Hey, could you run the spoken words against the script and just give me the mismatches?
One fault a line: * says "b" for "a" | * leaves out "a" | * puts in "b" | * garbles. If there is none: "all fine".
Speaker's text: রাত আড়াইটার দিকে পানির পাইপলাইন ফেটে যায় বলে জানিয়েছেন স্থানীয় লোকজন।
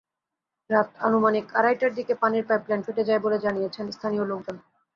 * puts in "আনুমানিক"